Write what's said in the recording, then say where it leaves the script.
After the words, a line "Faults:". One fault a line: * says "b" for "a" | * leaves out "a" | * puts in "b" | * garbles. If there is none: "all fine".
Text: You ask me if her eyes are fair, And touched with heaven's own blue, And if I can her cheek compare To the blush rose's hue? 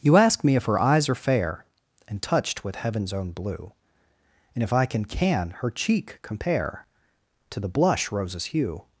You ask me if her eyes are fair, And touched with heaven's own blue, And if I can can her cheek compare To the blush rose's hue?
Faults:
* puts in "can"